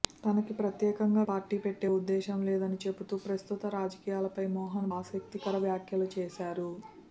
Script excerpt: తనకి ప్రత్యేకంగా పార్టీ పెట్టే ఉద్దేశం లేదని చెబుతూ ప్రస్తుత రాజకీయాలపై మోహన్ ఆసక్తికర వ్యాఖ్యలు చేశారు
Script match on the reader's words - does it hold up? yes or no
yes